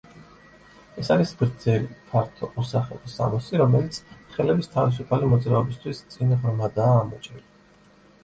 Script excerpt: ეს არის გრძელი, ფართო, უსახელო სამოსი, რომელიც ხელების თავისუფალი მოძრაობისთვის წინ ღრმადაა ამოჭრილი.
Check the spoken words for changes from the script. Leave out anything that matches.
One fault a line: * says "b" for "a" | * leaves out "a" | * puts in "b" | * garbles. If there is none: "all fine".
all fine